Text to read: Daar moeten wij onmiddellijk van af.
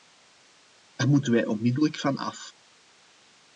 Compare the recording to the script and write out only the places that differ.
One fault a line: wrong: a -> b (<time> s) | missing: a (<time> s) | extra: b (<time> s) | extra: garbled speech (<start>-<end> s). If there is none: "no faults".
no faults